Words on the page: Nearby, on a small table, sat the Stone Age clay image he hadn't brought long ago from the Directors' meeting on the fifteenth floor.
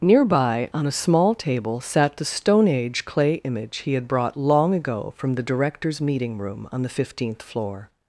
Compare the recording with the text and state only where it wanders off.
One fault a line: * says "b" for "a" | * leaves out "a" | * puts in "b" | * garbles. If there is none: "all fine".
* says "had" for "hadn't"
* puts in "room"